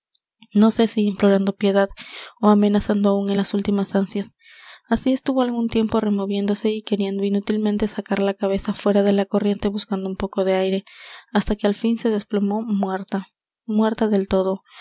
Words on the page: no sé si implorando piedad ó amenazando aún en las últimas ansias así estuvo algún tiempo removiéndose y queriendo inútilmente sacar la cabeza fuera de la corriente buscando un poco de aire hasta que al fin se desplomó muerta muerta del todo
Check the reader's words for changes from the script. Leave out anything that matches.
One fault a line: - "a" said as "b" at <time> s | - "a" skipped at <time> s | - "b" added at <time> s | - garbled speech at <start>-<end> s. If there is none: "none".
none